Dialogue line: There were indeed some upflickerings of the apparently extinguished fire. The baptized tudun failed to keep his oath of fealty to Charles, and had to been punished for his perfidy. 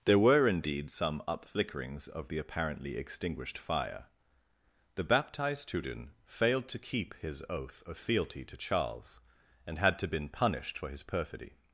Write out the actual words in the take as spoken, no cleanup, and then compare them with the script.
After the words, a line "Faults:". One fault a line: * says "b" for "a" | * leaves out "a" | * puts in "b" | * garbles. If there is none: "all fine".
There were indeed some upflickerings of the apparently extinguished fire. The baptized tudun failed to keep his oath of fealty to Charles, and had to been punished for his perfidy.
Faults:
all fine